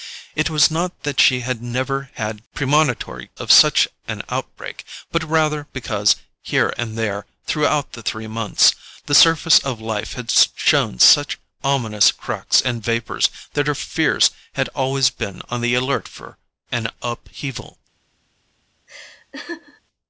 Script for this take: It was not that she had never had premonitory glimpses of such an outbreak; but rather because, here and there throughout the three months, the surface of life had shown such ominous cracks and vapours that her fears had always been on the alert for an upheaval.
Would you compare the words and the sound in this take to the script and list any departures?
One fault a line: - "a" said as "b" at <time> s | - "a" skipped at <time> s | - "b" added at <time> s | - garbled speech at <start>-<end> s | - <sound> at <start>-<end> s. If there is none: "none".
- "glimpses" skipped at 3.3 s
- laugh at 18.9-19.8 s